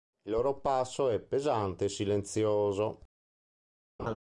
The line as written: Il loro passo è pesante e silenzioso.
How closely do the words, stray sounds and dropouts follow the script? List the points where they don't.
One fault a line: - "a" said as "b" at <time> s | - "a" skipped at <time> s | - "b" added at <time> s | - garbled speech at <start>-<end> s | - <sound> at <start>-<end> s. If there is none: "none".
- laugh at 4.0-4.2 s